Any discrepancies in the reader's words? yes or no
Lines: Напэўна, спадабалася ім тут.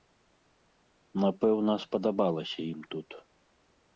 no